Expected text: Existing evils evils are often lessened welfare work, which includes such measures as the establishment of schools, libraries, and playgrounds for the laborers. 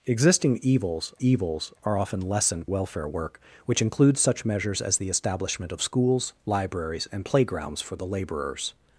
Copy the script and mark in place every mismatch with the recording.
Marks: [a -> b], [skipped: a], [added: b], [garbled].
Existing evils evils are often lessened welfare work, which includes such measures as the establishment of schools, libraries, and playgrounds for the laborers.